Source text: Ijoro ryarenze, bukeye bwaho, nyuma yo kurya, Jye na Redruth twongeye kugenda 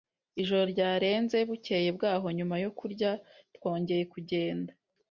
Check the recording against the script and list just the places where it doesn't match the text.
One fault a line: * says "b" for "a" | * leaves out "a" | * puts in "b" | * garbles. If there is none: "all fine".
* leaves out "Jye na Redruth"